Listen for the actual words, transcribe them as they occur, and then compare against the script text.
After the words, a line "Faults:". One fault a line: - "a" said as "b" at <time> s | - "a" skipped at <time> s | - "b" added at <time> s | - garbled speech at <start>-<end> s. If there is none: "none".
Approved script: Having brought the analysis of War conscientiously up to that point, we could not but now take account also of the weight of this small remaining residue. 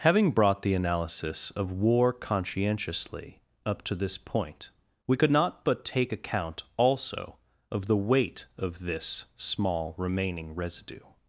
Having brought the analysis of War conscientiously up to this point, we could not but take account also of the weight of this small remaining residue.
Faults:
- "that" said as "this" at 3.9 s
- "now" skipped at 5.8 s